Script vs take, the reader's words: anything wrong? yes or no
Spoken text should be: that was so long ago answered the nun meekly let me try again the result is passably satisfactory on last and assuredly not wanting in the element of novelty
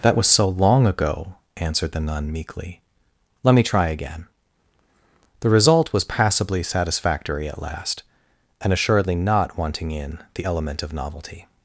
yes